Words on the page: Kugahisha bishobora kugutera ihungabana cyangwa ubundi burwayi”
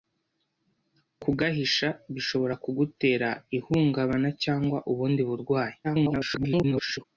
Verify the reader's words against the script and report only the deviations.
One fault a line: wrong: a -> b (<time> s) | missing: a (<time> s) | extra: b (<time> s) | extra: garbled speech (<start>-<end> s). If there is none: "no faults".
extra: garbled speech (5.8-7.0 s)